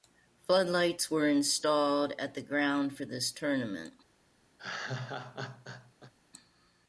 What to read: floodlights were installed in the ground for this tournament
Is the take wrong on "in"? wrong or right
wrong